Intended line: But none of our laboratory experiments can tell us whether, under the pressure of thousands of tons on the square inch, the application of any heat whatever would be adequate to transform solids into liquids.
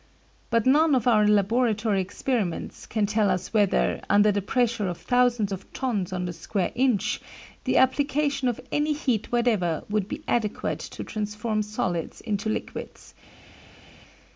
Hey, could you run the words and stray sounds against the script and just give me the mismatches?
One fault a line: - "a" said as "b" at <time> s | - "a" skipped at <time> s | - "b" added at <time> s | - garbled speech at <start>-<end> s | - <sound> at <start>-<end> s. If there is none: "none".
none